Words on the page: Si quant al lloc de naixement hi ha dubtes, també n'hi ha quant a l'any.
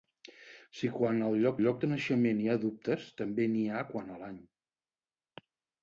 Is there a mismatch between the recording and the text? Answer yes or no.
yes